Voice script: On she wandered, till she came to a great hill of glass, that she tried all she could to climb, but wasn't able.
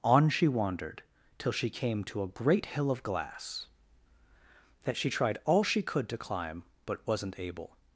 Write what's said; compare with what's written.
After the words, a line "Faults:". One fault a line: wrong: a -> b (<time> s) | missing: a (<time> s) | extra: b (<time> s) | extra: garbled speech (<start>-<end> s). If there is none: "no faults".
On she wandered, till she came to a great hill of glass, that she tried all she could to climb, but wasn't able.
Faults:
no faults